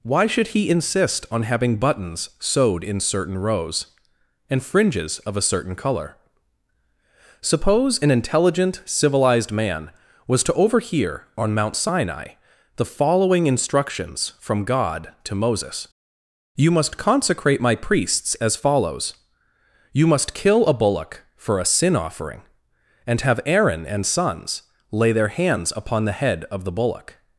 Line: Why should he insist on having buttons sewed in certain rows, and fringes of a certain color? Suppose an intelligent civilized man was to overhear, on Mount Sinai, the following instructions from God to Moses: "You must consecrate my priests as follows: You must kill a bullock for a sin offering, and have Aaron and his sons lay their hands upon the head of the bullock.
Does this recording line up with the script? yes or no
no